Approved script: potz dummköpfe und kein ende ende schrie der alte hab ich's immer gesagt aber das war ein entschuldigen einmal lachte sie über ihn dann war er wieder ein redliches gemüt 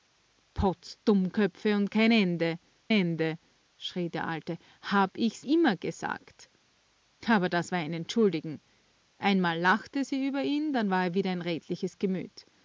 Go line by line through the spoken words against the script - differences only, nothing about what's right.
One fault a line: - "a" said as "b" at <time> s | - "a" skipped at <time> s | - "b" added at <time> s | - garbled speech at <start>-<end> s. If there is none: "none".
none